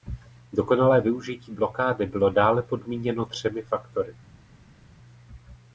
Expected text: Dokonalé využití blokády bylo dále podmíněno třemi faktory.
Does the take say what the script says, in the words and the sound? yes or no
yes